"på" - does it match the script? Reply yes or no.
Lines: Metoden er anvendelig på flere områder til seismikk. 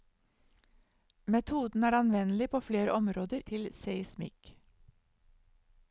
yes